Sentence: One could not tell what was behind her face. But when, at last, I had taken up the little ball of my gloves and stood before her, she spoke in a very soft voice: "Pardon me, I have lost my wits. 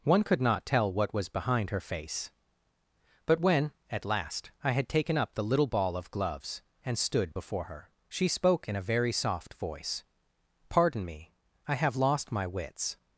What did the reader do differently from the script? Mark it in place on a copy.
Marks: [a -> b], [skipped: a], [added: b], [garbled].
One could not tell what was behind her face. But when, at last, I had taken up the little ball of [skipped: my] gloves and stood before her, she spoke in a very soft voice: "Pardon me, I have lost my wits.